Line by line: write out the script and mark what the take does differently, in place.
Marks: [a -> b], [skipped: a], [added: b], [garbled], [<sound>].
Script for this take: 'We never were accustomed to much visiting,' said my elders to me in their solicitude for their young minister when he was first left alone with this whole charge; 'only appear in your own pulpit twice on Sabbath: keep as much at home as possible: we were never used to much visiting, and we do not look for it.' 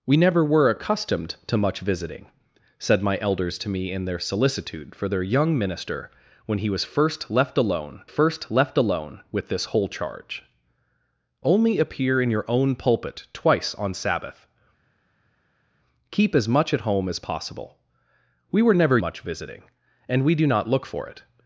'We never were accustomed to much visiting,' said my elders to me in their solicitude for their young minister when he was first left alone [added: first left alone] with this whole charge; 'only appear in your own pulpit twice on Sabbath: keep as much at home as possible: we were never [skipped: used to] much visiting, and we do not look for it.'